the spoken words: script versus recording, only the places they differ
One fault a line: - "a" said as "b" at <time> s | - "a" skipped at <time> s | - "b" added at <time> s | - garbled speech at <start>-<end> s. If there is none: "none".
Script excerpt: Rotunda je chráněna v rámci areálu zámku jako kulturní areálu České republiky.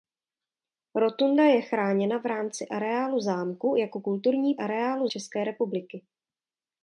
none